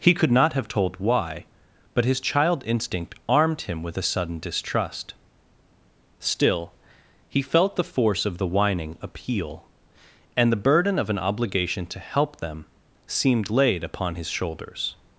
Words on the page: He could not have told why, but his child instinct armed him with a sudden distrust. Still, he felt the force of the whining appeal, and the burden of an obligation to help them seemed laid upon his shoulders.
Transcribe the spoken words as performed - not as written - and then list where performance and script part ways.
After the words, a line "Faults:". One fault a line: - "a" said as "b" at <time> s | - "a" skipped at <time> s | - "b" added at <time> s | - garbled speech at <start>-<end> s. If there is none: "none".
He could not have told why, but his child instinct armed him with a sudden distrust. Still, he felt the force of the whining appeal, and the burden of an obligation to help them seemed laid upon his shoulders.
Faults:
none